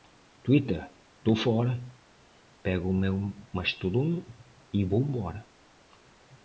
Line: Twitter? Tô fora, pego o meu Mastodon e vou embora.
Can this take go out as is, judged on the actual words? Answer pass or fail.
pass